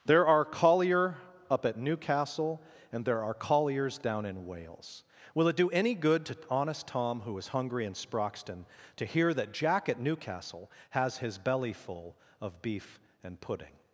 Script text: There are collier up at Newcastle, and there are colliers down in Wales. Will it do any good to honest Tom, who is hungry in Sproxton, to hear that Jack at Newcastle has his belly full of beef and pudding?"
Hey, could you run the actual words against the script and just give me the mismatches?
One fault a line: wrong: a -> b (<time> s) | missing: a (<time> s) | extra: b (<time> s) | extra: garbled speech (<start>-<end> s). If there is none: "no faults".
no faults